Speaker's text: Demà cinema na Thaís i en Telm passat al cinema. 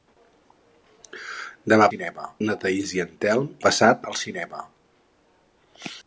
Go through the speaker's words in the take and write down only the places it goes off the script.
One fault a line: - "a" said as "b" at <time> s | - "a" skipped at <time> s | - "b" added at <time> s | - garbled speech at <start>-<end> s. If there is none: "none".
none